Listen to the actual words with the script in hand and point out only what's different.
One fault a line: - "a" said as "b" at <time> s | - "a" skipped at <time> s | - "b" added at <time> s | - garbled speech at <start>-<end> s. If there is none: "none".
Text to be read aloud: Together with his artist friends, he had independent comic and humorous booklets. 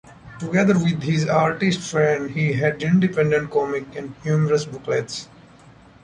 none